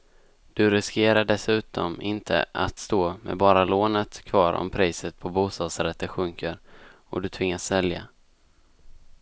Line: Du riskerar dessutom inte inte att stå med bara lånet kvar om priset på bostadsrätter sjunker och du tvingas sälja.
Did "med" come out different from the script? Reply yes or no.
no